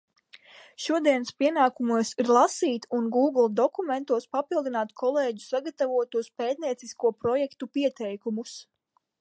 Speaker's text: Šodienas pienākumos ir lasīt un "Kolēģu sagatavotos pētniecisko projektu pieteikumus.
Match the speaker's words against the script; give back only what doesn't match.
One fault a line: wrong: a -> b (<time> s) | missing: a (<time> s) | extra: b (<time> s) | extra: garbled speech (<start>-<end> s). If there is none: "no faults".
extra: Gūgle dokumentos papildināt (3.2 s)